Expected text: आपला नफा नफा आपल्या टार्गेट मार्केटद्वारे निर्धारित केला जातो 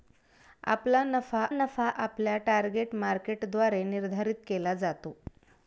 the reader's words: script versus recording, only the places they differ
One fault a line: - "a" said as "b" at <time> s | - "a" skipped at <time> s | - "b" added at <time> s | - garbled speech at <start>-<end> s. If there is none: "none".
none